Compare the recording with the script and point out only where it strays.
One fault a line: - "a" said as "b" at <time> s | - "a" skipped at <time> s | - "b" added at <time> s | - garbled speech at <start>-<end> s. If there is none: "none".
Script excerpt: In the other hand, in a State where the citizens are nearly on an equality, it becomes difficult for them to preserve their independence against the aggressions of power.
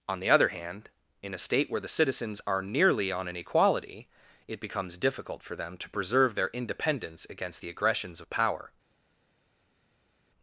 - "In" said as "On" at 0.1 s